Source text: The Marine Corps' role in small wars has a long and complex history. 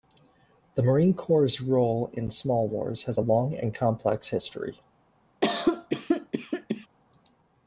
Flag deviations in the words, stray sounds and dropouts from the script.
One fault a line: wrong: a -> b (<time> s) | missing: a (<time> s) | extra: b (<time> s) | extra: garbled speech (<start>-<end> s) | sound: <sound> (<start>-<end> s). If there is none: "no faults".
sound: cough (5.4-6.9 s)